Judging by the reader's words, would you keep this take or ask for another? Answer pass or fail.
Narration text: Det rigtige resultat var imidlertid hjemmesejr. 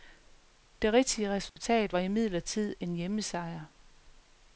fail